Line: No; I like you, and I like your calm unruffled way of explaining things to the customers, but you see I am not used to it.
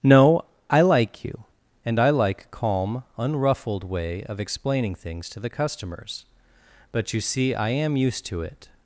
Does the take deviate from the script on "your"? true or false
true